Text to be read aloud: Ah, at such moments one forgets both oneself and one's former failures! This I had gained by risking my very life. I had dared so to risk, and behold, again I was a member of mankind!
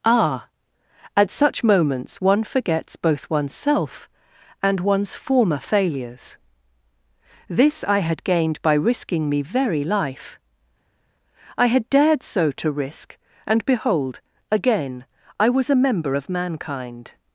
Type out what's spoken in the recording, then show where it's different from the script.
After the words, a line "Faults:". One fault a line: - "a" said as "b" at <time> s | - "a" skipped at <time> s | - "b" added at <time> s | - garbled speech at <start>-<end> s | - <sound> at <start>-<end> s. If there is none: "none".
Ah, at such moments one forgets both oneself and one's former failures! This I had gained by risking me very life. I had dared so to risk, and behold, again I was a member of mankind!
Faults:
- "my" said as "me" at 9.3 s